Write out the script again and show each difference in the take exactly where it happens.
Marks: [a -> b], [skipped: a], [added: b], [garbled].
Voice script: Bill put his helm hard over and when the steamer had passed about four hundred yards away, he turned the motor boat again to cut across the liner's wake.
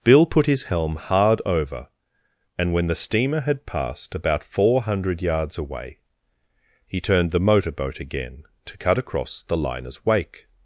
Bill put his helm hard over and when the steamer had passed about four hundred yards away, he turned the motor boat again to cut across the liner's wake.